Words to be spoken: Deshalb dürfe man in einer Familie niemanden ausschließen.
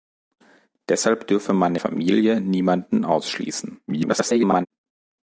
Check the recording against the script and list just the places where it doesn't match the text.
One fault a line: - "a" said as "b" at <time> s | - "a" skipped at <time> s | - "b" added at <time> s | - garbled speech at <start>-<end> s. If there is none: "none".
- "in einer" skipped at 1.8 s
- garbled speech at 3.9-4.7 s